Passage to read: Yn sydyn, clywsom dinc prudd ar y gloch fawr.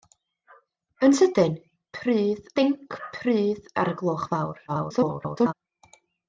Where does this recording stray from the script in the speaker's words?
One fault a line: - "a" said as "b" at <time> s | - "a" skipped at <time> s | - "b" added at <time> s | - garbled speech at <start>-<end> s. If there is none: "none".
- "clywsom" said as "prudd" at 2.0 s
- garbled speech at 4.7-5.5 s